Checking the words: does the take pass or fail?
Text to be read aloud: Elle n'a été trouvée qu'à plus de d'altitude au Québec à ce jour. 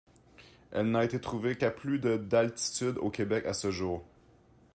pass